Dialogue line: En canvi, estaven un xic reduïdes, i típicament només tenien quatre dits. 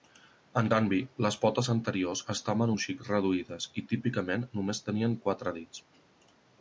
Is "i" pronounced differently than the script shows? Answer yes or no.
no